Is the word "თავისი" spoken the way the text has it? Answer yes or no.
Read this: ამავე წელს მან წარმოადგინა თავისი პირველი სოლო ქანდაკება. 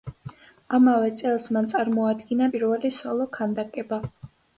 no